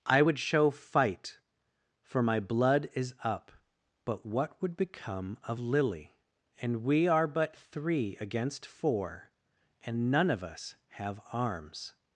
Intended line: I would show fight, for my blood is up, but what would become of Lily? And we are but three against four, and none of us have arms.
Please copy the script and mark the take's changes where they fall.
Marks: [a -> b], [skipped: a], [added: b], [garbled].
I would show fight, for my blood is up, but what would become of Lily? And we are but three against four, and none of us have arms.